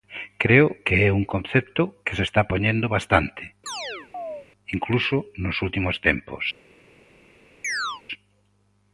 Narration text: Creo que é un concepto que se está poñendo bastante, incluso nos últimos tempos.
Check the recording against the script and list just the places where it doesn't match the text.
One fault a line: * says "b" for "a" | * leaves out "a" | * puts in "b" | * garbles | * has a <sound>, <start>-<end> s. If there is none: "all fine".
* has a chirp, 3.7-4.5 s
* has a chirp, 7.6-8.0 s